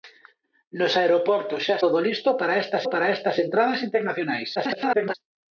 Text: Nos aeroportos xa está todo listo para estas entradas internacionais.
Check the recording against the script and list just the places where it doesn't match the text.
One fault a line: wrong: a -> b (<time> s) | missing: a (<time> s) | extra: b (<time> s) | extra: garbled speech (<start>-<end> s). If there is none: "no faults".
missing: está (1.8 s)
extra: para estas (2.9 s)
extra: garbled speech (4.6-5.1 s)